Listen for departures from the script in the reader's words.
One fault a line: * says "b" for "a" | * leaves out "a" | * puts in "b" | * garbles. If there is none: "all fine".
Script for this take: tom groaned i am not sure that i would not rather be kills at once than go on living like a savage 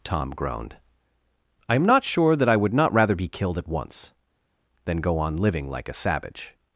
* says "killed" for "kills"